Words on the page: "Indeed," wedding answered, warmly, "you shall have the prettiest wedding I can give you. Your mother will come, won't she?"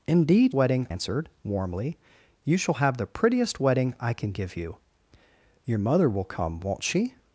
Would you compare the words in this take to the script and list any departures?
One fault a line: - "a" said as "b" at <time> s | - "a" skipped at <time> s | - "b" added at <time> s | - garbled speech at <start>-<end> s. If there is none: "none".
none